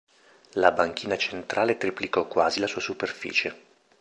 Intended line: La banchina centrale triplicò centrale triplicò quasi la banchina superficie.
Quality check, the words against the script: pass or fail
fail